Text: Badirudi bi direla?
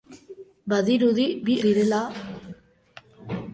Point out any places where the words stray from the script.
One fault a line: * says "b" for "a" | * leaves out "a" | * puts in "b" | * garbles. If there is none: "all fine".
all fine